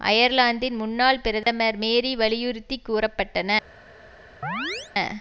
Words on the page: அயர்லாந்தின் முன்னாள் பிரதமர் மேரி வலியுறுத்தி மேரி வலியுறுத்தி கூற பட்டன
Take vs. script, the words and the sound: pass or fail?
fail